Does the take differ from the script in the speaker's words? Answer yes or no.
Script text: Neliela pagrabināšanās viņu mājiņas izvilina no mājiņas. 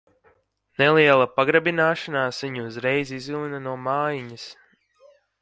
yes